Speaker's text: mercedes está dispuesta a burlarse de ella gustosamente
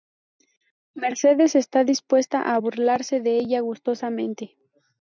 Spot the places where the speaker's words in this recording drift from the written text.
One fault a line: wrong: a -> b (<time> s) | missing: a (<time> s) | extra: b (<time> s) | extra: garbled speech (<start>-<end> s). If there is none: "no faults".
no faults